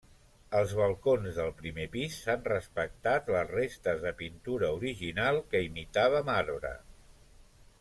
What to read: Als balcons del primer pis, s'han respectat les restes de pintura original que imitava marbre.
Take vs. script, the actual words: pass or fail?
pass